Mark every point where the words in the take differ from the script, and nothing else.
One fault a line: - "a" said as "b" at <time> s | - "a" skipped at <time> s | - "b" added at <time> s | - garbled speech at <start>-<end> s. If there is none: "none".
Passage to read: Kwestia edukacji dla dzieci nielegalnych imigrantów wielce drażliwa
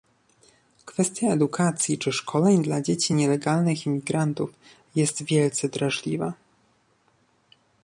- "czy szkoleń" added at 2.0 s
- "jest" added at 5.0 s